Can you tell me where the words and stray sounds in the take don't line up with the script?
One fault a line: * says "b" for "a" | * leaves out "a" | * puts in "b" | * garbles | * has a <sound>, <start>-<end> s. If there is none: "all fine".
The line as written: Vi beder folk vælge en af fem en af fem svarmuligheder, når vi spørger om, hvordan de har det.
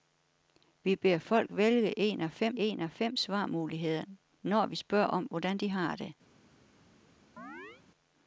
* has a chirp, 7.4-7.8 s